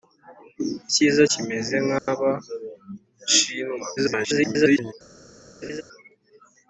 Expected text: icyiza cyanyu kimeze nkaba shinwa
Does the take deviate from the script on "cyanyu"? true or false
true